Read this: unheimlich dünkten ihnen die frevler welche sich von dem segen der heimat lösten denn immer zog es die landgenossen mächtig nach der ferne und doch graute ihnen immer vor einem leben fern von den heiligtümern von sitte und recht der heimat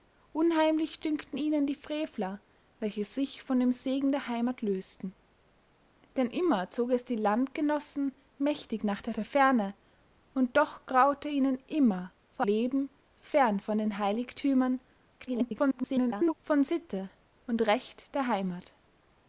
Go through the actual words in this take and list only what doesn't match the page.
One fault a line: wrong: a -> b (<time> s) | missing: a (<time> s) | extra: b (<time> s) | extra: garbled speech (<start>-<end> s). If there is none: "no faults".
extra: der (9.1 s)
missing: einem (12.5 s)
extra: garbled speech (15.2-16.3 s)